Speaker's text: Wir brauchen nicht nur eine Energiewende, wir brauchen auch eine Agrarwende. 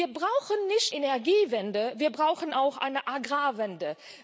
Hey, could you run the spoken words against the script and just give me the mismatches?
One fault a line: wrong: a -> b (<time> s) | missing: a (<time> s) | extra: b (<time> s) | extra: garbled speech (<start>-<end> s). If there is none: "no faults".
missing: nur eine (0.9 s)